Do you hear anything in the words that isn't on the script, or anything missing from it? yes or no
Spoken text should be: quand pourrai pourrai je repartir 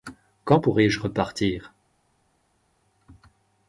yes